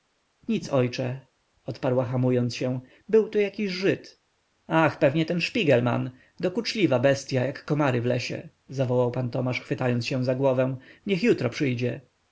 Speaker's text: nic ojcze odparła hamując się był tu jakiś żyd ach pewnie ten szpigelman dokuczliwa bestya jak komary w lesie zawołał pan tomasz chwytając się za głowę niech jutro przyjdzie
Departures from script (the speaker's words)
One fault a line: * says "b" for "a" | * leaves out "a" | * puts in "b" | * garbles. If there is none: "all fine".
all fine